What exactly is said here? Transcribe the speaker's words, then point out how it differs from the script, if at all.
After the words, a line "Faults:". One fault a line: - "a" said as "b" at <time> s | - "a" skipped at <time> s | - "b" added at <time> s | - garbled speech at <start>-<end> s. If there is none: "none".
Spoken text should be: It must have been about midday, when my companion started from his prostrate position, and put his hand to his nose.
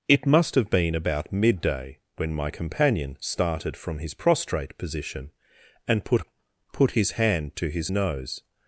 It must have been about midday, when my companion started from his prostrate position, and put put his hand to his nose.
Faults:
- "put" added at 6.7 s